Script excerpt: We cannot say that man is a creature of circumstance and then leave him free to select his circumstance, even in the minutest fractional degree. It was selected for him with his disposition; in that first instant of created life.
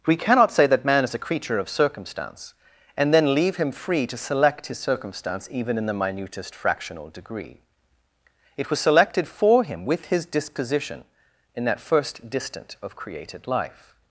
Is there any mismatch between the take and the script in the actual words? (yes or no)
yes